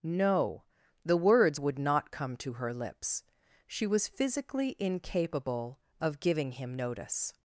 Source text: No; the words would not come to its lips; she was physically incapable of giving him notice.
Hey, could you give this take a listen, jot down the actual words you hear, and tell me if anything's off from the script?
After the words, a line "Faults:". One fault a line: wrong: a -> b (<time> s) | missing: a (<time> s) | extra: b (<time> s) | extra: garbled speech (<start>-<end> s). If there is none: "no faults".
No; the words would not come to her lips; she was physically incapable of giving him notice.
Faults:
wrong: its -> her (2.5 s)